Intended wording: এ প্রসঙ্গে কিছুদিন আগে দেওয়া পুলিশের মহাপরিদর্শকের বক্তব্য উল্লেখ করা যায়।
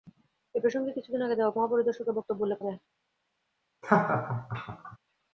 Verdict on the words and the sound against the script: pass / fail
fail